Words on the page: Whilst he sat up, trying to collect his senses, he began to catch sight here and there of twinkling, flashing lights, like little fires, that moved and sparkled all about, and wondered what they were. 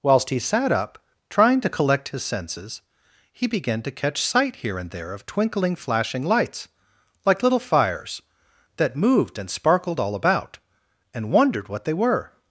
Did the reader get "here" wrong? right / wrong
right